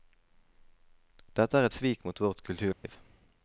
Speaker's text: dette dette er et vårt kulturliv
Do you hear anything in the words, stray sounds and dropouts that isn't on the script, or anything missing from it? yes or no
yes